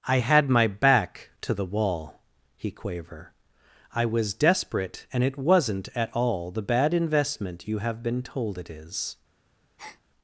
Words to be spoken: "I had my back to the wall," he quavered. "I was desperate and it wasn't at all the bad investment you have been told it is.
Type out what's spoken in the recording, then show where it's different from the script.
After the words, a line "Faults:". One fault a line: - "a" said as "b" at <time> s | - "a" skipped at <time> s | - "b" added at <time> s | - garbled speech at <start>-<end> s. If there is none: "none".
"I had my back to the wall," he quaver. "I was desperate and it wasn't at all the bad investment you have been told it is.
Faults:
- "quavered" said as "quaver" at 2.7 s